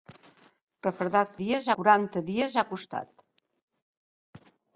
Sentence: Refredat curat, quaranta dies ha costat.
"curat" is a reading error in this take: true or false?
true